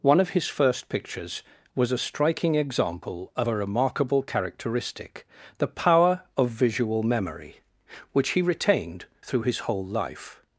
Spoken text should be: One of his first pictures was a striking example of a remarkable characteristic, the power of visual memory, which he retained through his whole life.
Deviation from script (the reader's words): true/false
false